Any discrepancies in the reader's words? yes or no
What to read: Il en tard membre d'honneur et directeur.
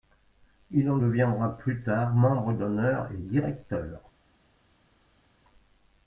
yes